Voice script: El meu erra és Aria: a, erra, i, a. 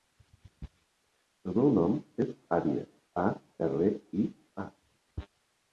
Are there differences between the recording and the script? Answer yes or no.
yes